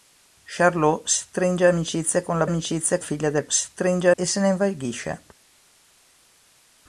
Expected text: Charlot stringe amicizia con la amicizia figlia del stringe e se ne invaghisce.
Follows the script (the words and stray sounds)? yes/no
yes